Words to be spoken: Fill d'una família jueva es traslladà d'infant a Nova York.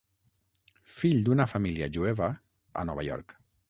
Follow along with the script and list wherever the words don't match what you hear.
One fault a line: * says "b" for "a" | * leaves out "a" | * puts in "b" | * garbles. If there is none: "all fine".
* leaves out "es traslladà d'infant"